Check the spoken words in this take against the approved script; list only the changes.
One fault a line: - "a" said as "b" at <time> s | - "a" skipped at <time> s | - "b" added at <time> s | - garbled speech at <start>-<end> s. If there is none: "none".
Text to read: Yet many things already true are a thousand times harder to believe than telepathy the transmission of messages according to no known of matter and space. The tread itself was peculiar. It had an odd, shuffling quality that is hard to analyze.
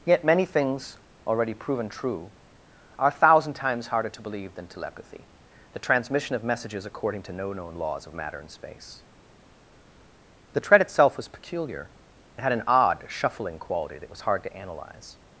- "proven" added at 1.5 s
- "laws" added at 7.8 s
- "is" said as "was" at 14.1 s